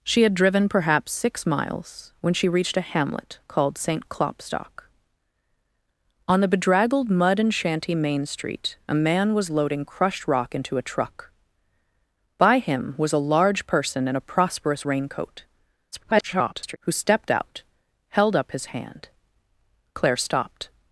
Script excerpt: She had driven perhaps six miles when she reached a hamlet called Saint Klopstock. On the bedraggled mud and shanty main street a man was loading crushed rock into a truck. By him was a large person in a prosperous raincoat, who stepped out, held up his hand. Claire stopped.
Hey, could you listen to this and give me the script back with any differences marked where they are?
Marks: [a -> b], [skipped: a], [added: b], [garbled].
She had driven perhaps six miles when she reached a hamlet called Saint Klopstock. On the bedraggled mud and shanty main street a man was loading crushed rock into a truck. By him was a large person in a prosperous raincoat, [garbled] who stepped out, held up his hand. Claire stopped.